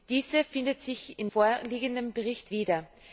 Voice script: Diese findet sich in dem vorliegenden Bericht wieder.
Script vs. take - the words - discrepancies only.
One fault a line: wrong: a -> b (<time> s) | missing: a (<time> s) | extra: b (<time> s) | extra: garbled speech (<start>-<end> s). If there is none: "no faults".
missing: dem (1.3 s)